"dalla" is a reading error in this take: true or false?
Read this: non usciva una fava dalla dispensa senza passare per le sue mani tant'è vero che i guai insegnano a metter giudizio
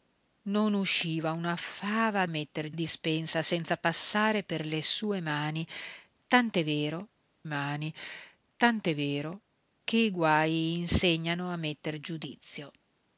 true